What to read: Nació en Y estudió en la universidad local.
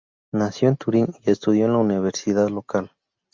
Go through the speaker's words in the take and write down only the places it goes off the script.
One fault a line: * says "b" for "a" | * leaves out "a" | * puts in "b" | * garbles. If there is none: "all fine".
* puts in "Turín"